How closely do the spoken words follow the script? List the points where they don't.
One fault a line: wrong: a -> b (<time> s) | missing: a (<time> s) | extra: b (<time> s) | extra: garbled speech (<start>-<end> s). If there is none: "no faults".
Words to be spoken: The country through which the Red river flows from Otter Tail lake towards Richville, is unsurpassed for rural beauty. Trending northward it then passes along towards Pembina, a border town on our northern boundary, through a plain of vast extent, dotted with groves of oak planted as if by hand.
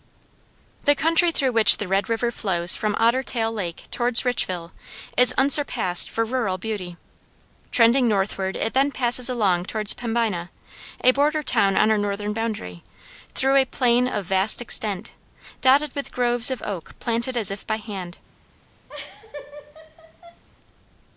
no faults